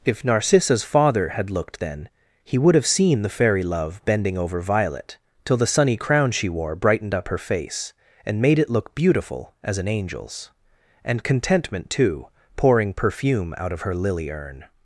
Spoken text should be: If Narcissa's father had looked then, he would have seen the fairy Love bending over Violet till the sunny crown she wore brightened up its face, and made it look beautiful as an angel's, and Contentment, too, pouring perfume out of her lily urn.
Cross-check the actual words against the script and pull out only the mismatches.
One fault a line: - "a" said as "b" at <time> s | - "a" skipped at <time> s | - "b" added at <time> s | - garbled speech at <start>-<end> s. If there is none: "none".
- "its" said as "her" at 7.3 s